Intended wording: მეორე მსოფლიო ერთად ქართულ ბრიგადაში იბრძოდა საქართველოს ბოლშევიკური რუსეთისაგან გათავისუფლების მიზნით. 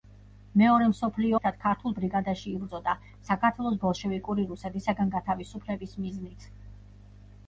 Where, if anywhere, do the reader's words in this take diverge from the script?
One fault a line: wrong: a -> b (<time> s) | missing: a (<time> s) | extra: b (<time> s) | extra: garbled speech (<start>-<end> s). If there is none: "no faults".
no faults